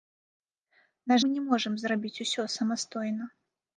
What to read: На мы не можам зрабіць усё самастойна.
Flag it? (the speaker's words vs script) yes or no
no